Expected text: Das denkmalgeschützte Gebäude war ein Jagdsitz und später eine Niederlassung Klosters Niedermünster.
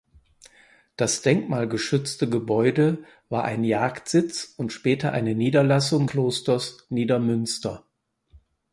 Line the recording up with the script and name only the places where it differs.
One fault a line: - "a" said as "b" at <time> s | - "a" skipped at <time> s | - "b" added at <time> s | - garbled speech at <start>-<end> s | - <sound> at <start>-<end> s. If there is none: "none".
none